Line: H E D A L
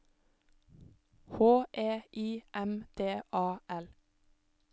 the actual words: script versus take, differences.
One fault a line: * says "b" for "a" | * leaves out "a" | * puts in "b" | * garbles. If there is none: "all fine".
* puts in "I M"